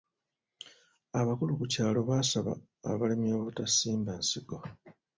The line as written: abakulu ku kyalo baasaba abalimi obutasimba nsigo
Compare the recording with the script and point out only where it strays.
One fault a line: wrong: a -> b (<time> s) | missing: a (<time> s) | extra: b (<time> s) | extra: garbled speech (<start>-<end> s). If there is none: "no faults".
no faults